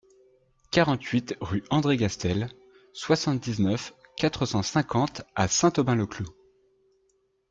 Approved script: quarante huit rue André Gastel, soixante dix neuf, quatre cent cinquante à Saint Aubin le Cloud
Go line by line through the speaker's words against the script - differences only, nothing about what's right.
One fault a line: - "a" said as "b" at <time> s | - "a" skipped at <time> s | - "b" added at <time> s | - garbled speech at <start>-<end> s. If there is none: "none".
none